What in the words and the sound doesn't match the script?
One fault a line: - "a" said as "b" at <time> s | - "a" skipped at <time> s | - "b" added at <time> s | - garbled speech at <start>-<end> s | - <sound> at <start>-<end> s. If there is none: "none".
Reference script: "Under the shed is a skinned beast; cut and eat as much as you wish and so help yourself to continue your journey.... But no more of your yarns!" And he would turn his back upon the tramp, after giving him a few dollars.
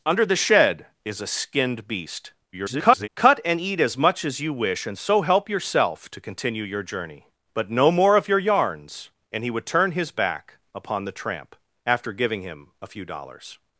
- garbled speech at 2.5-3.1 s